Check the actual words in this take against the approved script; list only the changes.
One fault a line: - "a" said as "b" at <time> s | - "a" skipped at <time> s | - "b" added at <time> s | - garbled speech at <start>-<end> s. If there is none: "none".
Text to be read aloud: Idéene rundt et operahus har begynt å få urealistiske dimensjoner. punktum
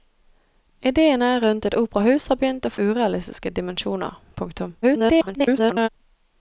- "få" skipped at 2.7 s
- garbled speech at 4.8-5.9 s